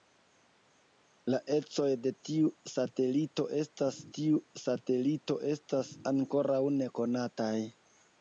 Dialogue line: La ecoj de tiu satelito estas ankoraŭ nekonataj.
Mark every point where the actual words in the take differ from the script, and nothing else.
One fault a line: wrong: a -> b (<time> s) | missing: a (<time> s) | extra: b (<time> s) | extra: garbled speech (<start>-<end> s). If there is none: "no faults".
extra: tiu satelito estas (4.2 s)